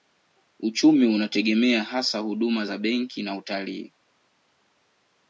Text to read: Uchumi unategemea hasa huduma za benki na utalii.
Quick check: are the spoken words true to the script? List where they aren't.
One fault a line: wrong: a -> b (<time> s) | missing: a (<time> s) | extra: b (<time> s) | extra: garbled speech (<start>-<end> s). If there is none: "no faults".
no faults